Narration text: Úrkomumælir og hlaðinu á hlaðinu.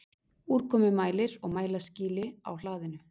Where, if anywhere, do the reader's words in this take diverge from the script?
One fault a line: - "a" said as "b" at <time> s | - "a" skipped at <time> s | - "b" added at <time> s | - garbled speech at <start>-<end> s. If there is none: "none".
- "hlaðinu" said as "mælaskýli" at 1.6 s